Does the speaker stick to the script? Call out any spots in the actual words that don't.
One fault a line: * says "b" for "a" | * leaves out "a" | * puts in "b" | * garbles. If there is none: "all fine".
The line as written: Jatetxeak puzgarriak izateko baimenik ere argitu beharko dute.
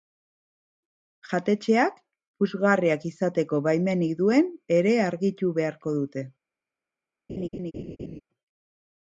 * puts in "duen"